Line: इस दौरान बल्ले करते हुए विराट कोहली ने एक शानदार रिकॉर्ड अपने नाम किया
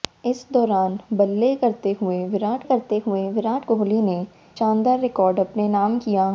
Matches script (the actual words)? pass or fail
fail